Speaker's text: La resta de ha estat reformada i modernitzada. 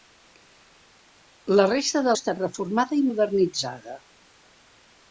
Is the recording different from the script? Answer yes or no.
no